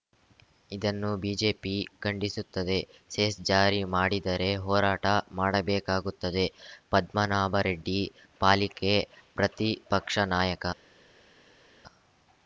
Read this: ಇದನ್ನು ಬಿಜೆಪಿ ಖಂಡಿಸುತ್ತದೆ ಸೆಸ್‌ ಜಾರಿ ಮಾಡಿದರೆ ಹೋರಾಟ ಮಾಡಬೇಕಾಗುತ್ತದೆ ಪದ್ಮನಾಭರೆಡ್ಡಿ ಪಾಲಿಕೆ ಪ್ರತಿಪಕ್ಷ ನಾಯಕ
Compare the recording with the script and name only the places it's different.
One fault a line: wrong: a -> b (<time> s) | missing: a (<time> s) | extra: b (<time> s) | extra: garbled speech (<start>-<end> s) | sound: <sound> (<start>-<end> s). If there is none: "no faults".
no faults